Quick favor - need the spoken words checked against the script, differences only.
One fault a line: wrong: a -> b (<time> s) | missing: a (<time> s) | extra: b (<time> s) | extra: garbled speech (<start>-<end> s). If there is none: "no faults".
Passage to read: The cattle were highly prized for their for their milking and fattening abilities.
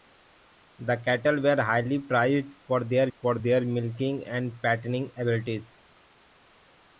no faults